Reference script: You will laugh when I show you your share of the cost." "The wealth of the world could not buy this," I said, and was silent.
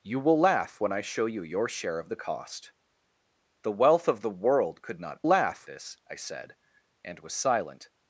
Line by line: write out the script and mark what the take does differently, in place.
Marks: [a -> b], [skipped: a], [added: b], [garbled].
You will laugh when I show you your share of the cost." "The wealth of the world could not [buy -> laugh] this," I said, and was silent.